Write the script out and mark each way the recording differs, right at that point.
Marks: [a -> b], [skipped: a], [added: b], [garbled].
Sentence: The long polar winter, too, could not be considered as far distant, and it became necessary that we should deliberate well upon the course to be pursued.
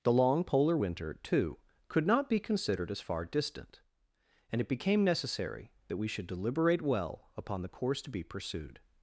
The long polar winter, too, could not be considered as far distant, and it became necessary that we should deliberate well upon the course to be pursued.